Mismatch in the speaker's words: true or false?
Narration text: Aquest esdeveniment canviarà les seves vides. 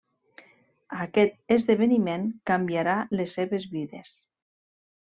false